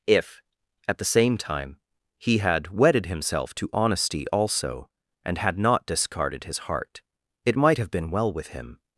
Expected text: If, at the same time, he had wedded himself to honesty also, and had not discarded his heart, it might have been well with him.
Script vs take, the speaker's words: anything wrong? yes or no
no